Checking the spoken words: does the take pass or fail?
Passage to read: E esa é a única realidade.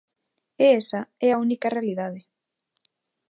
pass